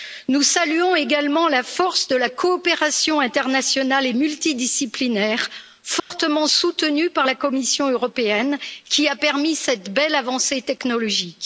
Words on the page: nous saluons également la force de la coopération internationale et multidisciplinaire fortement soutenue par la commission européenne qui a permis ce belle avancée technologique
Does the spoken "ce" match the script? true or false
false